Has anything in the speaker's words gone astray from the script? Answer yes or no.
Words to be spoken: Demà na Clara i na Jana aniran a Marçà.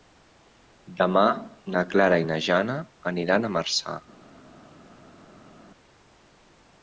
no